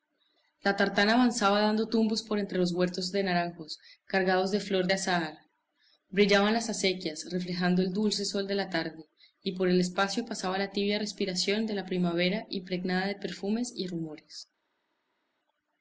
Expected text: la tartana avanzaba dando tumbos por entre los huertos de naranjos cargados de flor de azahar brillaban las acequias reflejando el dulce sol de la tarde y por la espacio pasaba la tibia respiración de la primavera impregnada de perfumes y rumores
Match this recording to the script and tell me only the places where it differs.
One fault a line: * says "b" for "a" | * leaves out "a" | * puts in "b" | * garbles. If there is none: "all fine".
* says "el" for "la"